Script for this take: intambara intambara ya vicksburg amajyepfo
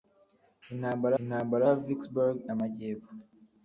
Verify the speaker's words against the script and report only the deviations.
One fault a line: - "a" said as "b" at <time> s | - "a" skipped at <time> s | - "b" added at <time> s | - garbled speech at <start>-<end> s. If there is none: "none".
none